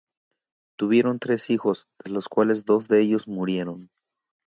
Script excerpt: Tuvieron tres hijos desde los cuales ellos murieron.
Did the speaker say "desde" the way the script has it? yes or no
no